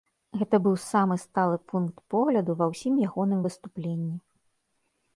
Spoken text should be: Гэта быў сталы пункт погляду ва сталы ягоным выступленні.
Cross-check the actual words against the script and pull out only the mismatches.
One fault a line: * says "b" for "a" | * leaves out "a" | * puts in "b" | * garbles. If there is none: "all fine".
* puts in "самы"
* says "ўсім" for "сталы"